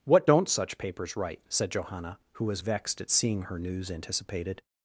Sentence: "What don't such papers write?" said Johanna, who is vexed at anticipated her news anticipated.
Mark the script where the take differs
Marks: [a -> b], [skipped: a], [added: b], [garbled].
"What don't such papers write?" said Johanna, who [is -> was] vexed at [anticipated -> seeing] her news anticipated.